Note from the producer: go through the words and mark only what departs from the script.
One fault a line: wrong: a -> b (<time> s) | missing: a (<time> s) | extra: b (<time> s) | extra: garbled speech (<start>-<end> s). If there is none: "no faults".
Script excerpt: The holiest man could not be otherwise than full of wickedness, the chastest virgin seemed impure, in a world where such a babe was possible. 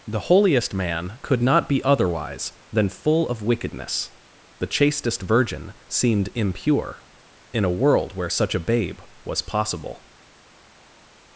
no faults